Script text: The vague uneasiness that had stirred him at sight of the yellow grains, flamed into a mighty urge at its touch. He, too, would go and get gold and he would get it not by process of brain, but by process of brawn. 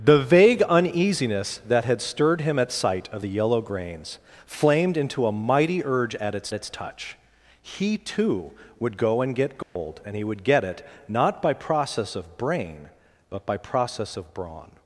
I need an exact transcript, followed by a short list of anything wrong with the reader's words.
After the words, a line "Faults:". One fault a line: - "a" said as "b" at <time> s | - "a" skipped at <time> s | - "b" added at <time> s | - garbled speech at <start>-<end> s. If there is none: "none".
The vague uneasiness that had stirred him at sight of the yellow grains, flamed into a mighty urge at its its touch. He, too, would go and get gold and he would get it not by process of brain, but by process of brawn.
Faults:
- "its" added at 6.5 s